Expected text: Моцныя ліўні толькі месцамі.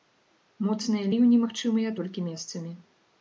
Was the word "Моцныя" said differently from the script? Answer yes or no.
no